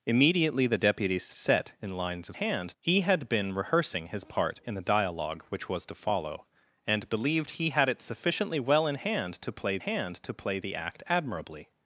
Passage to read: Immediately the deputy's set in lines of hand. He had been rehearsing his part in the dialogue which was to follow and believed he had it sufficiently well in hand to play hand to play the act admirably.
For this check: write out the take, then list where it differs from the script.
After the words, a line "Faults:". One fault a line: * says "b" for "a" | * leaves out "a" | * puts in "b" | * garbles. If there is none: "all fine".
Immediately the deputy's set in lines of hand. He had been rehearsing his part in the dialogue which was to follow and believed he had it sufficiently well in hand to play hand to play the act admirably.
Faults:
all fine